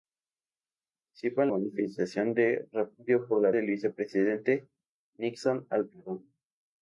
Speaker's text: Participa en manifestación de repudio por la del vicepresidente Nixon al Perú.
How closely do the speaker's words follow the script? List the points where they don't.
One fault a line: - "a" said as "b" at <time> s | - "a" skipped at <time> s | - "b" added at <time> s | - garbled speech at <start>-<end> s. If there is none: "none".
none